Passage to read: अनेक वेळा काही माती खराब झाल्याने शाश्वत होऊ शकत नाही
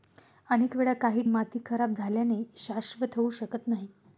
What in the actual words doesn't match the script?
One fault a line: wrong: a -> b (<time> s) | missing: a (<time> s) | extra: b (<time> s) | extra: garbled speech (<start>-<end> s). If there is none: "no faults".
no faults